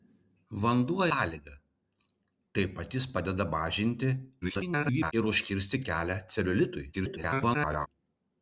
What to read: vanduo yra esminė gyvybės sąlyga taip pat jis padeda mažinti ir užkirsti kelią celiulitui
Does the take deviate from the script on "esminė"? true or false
true